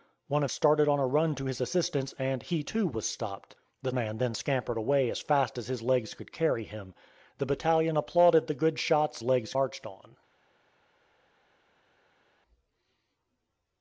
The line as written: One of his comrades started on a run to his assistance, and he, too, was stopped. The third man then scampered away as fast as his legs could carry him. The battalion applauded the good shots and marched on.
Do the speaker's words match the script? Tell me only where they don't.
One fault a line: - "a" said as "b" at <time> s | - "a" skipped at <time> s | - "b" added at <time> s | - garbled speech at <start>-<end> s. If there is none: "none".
- "his comrades" skipped at 0.5 s
- "third" skipped at 3.9 s
- "and" said as "legs" at 9.2 s